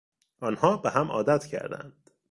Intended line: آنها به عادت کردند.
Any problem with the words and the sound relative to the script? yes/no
yes